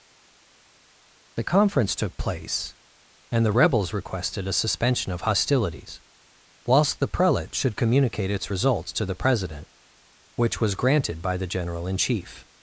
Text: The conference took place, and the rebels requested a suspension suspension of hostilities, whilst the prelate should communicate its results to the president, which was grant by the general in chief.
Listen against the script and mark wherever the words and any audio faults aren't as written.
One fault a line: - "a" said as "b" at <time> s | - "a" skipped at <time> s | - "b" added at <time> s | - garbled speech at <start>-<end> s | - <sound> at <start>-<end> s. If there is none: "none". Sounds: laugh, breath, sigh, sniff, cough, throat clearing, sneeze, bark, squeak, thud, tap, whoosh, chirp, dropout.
- "suspension" skipped at 5.1 s
- "grant" said as "granted" at 10.7 s